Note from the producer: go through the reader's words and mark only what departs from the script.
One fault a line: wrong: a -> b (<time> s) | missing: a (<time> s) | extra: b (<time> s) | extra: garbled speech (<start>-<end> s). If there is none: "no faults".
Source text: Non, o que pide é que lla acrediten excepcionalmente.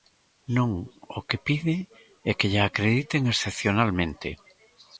no faults